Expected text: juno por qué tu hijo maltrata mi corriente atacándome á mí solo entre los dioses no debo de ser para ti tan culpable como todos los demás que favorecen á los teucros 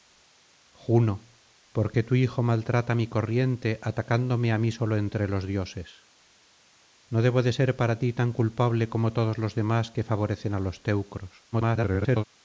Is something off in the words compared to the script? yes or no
yes